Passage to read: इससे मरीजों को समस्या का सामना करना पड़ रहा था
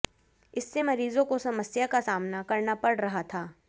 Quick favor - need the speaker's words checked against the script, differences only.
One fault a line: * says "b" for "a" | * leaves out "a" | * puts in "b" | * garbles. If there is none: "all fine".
all fine